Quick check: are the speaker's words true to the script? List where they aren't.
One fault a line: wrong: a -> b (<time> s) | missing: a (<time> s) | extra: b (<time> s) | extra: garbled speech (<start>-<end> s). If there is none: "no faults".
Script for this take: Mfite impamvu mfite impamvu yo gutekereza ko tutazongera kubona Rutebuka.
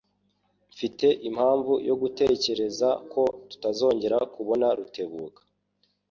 missing: mfite impamvu (1.7 s)